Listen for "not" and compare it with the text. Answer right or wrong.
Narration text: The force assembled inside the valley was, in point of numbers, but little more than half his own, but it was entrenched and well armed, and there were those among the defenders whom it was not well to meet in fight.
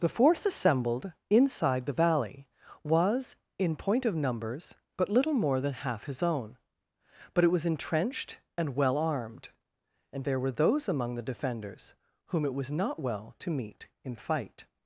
right